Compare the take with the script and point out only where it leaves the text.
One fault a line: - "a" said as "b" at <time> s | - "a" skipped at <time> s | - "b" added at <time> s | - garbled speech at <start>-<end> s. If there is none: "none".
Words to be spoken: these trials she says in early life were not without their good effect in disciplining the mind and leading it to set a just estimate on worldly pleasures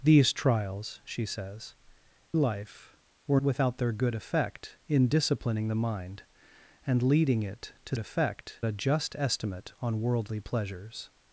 - "in early" skipped at 1.8 s
- "not" skipped at 3.4 s
- "set" said as "effect" at 8.0 s